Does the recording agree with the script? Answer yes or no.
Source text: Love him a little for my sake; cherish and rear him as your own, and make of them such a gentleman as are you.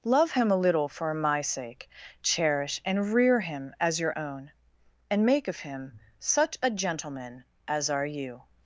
no